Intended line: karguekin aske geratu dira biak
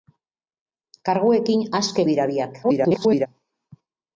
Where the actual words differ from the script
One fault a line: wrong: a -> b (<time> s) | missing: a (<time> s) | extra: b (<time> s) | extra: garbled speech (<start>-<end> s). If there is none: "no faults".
missing: geratu (2.0 s)
extra: garbled speech (2.6-3.3 s)